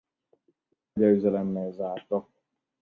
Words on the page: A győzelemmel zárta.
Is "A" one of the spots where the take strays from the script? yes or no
no